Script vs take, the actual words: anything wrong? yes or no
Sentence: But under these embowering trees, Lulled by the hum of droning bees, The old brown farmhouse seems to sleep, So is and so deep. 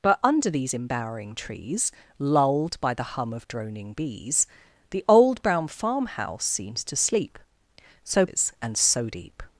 no